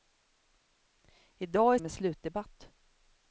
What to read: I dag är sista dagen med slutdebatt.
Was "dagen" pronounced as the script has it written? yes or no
no